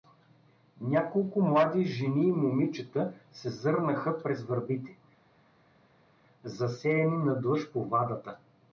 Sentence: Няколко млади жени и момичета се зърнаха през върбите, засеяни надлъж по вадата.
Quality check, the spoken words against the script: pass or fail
pass